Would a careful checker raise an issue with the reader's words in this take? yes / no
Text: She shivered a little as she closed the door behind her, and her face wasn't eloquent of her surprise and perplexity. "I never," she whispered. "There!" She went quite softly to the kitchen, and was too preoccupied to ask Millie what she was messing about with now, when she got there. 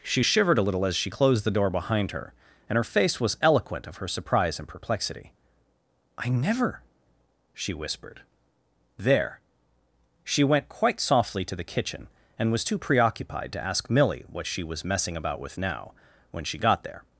yes